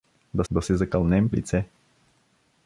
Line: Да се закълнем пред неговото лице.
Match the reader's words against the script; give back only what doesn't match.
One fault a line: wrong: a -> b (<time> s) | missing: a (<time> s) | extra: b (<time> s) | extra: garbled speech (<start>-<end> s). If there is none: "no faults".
extra: да (0.5 s)
missing: пред неговото (1.3 s)